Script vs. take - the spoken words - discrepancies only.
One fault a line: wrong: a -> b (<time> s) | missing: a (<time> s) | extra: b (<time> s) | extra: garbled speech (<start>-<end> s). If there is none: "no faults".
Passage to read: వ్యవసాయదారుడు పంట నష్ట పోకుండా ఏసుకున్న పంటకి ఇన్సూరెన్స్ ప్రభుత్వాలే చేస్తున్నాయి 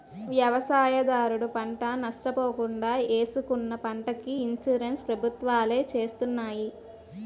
no faults